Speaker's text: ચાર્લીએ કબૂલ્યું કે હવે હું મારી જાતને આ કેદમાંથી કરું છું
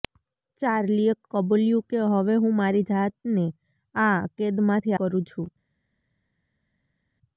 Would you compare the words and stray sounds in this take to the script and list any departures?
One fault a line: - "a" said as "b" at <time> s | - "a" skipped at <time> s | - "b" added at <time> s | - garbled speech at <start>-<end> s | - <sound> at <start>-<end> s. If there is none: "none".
none